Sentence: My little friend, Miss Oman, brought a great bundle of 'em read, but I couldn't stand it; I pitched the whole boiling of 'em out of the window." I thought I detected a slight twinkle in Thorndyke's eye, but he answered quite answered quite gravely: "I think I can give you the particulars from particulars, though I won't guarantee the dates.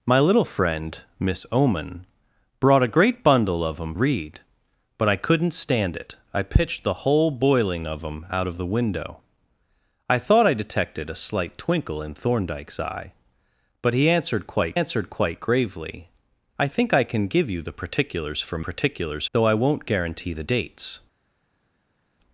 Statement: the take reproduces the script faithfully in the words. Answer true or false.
true